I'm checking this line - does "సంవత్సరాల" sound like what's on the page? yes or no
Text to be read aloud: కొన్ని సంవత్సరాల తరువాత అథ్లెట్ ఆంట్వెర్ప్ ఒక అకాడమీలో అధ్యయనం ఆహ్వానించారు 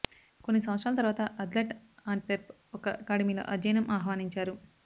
yes